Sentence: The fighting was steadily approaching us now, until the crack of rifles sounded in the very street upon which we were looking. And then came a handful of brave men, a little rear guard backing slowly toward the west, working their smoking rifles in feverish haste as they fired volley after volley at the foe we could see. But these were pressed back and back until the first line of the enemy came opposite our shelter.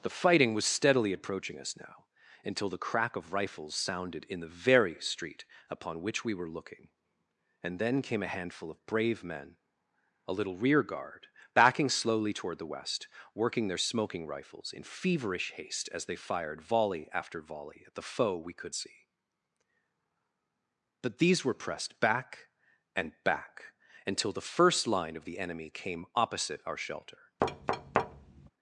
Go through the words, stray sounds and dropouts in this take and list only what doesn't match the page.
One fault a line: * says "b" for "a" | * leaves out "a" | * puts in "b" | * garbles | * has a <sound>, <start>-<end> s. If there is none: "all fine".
* has a thud, 27.4-28.5 s